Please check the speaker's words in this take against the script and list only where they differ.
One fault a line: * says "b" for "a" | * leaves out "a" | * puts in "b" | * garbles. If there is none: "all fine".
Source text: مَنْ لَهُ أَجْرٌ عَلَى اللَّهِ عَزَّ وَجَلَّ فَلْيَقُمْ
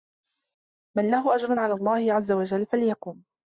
all fine